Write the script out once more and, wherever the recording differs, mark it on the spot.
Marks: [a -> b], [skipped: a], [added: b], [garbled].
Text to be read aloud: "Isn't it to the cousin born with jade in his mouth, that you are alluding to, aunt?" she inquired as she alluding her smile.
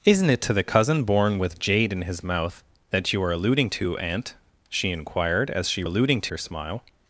"Isn't it to the cousin born with jade in his mouth, that you are alluding to, aunt?" she inquired as she alluding her smile.